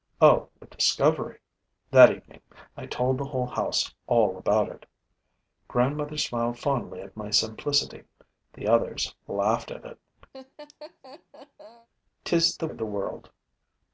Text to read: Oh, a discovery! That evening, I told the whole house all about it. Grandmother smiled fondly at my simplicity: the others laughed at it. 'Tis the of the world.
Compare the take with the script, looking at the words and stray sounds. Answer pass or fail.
fail